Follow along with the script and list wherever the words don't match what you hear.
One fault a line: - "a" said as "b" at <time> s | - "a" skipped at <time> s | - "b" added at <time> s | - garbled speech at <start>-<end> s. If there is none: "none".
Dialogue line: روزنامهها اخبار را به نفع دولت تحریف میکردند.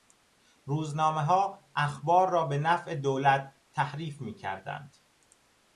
none